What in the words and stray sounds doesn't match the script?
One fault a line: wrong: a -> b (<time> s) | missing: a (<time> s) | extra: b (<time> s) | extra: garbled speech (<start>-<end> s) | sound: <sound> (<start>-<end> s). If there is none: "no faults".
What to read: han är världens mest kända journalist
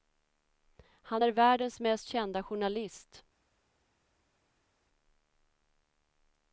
no faults